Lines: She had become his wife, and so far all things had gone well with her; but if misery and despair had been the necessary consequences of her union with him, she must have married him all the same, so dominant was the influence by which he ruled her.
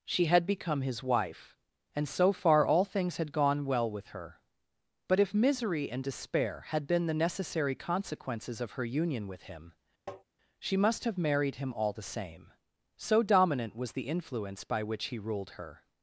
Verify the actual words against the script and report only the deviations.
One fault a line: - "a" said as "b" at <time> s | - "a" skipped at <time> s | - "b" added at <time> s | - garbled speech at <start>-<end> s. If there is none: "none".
none